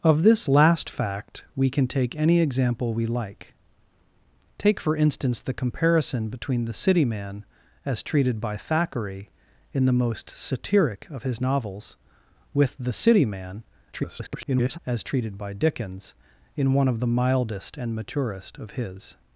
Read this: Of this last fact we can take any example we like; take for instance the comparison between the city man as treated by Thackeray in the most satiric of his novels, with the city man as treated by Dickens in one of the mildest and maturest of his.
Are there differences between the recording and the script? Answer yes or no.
yes